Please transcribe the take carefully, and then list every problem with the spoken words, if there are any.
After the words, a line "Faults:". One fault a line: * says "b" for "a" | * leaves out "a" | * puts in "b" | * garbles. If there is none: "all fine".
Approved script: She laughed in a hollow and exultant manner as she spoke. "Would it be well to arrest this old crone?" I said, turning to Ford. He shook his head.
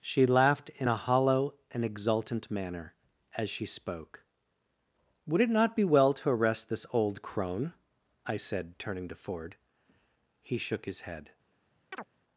She laughed in a hollow and exultant manner as she spoke. "Would it not be well to arrest this old crone?" I said, turning to Ford. He shook his head.
Faults:
* puts in "not"